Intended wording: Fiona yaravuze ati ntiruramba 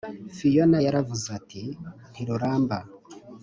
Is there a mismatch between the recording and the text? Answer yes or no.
no